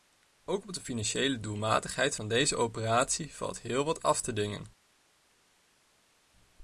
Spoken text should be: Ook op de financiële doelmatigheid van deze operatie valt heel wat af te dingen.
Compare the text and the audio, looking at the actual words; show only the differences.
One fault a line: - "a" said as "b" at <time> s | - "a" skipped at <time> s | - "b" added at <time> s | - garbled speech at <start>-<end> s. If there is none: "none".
none